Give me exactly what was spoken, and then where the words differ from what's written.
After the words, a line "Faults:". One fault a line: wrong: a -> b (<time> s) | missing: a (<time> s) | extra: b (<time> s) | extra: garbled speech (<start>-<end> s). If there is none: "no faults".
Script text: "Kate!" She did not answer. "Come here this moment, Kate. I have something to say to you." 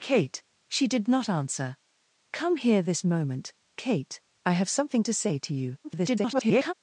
"Kate!" She did not answer. "Come here this moment, Kate. I have something to say to you." [garbled]
Faults:
extra: garbled speech (5.8-6.7 s)